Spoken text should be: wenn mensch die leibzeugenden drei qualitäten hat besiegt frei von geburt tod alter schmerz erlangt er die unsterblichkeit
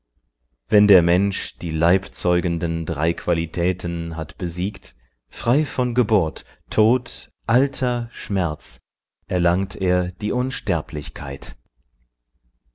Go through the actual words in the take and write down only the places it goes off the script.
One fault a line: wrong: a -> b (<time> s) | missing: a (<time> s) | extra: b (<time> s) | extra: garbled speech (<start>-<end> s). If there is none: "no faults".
extra: der (0.9 s)